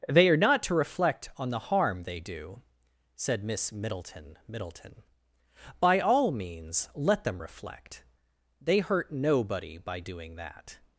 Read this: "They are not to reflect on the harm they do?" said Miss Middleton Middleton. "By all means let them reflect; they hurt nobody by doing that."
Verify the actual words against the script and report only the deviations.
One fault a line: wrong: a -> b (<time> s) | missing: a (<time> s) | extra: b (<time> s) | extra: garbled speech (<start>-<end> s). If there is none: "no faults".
no faults